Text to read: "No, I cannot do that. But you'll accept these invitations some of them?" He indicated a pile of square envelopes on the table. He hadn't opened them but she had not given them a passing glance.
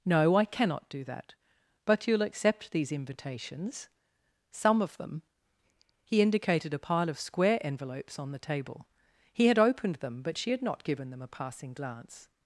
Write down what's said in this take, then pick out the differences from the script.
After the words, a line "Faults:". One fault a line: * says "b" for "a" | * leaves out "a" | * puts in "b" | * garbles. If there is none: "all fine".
"No, I cannot do that. But you'll accept these invitations some of them?" He indicated a pile of square envelopes on the table. He had opened them but she had not given them a passing glance.
Faults:
* says "had" for "hadn't"